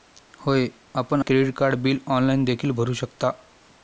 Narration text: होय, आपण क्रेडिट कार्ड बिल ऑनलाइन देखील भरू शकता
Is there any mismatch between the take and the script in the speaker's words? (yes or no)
no